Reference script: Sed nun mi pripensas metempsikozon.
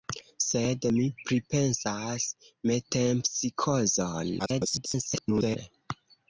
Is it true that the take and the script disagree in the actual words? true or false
true